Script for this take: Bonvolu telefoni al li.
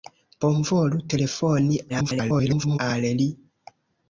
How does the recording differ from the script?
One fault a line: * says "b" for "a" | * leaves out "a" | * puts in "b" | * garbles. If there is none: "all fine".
* garbles